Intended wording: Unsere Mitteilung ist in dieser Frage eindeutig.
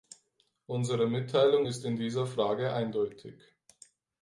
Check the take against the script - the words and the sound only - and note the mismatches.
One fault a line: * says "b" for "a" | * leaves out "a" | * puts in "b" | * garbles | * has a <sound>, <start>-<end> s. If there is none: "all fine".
all fine